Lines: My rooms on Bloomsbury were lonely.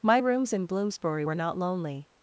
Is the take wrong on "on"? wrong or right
wrong